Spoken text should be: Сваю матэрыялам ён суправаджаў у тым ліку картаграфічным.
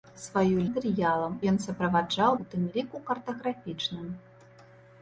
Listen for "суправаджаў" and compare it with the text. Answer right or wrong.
right